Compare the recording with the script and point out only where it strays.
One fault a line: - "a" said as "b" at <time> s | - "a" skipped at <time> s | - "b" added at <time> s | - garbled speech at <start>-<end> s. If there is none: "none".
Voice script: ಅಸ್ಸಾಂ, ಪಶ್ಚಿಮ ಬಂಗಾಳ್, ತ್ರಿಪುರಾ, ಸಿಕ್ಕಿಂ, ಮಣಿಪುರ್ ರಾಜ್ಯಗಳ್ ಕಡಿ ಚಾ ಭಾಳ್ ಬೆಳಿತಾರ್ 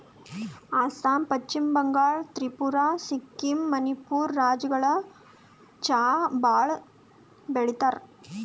- "ಕಡಿ" skipped at 4.9 s